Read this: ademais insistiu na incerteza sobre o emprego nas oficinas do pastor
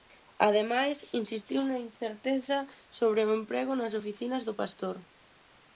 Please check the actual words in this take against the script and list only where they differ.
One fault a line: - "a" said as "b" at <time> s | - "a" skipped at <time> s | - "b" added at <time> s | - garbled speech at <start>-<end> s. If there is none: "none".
none